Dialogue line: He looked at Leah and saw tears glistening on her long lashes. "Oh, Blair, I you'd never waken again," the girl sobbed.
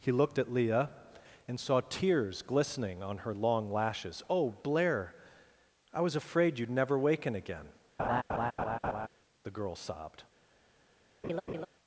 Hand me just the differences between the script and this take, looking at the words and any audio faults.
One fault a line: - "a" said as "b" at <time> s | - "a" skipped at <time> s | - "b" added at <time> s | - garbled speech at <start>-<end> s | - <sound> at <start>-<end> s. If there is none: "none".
- "was afraid" added at 6.0 s
- laugh at 8.0-9.1 s
- laugh at 11.2-11.7 s